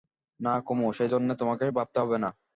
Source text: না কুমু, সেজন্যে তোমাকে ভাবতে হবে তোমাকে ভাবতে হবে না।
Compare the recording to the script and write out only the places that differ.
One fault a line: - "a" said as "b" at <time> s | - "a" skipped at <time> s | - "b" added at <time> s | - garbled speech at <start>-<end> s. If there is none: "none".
- "তোমাকে ভাবতে হবে" skipped at 2.2 s